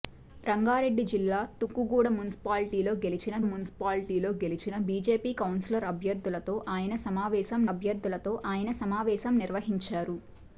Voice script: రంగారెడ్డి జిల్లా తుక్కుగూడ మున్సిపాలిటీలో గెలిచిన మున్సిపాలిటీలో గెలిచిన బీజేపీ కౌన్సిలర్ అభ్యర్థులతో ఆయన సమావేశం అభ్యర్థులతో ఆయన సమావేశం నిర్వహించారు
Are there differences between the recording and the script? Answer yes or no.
no